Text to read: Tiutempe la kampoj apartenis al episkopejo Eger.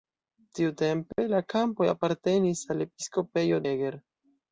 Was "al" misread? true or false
false